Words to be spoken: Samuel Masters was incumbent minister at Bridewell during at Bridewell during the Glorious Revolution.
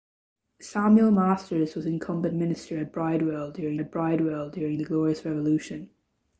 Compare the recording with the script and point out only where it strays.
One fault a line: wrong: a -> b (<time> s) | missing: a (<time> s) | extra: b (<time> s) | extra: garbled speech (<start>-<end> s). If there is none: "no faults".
no faults